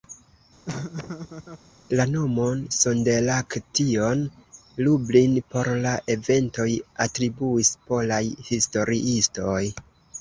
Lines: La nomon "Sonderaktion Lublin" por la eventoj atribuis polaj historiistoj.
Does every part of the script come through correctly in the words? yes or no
yes